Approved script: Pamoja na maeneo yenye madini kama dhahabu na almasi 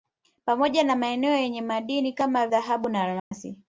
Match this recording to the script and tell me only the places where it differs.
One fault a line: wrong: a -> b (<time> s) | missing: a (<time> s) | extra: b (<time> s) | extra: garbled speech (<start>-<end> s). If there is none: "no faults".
no faults